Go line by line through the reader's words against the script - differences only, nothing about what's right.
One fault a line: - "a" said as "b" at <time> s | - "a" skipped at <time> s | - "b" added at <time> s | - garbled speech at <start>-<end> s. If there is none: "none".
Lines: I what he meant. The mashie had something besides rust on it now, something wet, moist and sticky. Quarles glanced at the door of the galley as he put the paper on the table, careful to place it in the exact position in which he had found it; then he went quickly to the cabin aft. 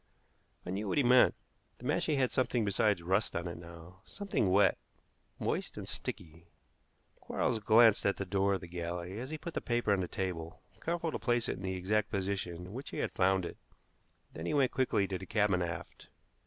- "knew" added at 0.7 s